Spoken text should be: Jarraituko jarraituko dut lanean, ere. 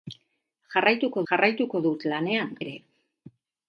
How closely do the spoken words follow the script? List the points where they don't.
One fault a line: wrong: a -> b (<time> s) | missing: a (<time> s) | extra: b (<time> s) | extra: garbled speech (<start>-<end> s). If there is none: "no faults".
no faults